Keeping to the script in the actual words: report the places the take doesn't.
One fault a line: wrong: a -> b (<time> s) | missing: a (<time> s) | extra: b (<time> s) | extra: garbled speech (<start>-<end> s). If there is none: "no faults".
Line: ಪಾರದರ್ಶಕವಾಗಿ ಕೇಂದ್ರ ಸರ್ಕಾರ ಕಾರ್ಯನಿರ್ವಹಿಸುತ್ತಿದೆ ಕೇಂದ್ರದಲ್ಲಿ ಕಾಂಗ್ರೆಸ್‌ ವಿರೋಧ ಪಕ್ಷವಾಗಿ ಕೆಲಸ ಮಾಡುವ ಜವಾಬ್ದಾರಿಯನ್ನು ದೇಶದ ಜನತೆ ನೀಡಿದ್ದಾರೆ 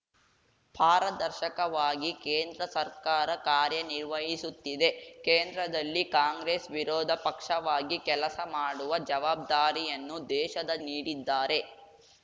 missing: ಜನತೆ (10.8 s)